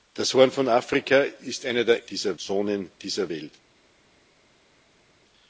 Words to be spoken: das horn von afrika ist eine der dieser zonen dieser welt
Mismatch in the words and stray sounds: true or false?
false